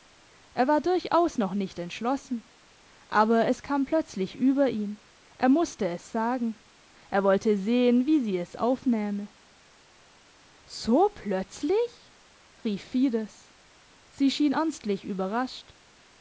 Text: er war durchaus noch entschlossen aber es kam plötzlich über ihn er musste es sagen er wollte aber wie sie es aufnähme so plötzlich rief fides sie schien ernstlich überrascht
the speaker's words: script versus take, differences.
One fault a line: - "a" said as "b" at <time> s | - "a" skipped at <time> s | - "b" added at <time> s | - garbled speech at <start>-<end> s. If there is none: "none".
- "nicht" added at 1.5 s
- "aber" said as "sehen" at 7.6 s